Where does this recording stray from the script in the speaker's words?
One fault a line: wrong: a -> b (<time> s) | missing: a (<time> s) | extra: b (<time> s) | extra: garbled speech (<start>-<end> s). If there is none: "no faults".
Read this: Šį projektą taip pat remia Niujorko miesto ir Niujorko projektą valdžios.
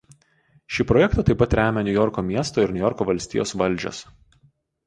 wrong: projektą -> valstijos (3.1 s)